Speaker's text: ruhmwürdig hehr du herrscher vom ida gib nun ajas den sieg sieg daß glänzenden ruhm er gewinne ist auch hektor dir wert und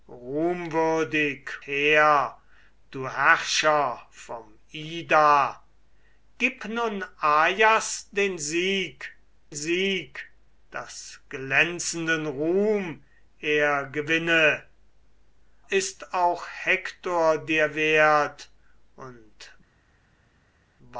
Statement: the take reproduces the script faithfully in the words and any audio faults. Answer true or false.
true